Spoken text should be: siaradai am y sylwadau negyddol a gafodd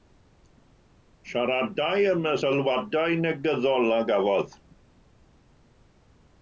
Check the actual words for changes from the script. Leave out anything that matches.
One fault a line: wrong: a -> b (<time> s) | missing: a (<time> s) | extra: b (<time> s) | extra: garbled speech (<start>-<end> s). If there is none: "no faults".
no faults